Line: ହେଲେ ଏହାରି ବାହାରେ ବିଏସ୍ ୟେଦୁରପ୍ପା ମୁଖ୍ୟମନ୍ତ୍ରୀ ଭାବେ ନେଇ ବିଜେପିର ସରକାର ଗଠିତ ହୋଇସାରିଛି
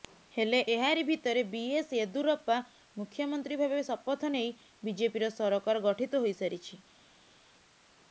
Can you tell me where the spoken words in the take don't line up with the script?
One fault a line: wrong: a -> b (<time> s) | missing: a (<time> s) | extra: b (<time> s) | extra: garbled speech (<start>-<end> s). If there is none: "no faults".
wrong: ବାହାରେ -> ଭିତରେ (1.1 s)
extra: ଶପଥ (3.9 s)